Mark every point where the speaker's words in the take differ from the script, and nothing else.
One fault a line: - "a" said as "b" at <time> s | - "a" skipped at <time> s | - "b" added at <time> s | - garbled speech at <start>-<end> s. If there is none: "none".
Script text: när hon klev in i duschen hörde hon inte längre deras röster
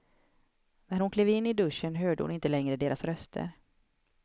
none